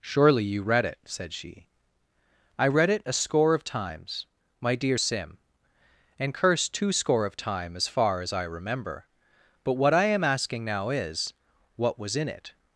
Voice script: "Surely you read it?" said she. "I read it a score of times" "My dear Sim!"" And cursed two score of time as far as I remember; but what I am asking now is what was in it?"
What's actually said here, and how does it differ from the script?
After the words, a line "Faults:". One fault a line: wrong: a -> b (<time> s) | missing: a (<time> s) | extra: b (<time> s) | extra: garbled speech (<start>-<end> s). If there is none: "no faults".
"Surely you read it?" said she. "I read it a score of times" "My dear Sim!"" And cursed two score of time as far as I remember; but what I am asking now is what was in it?"
Faults:
no faults